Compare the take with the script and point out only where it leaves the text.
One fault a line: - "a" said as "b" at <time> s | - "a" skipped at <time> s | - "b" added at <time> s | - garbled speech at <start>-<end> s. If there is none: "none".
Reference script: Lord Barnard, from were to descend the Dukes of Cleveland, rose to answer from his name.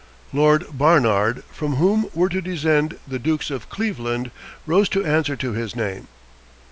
- "whom" added at 1.8 s
- "from" said as "to" at 5.3 s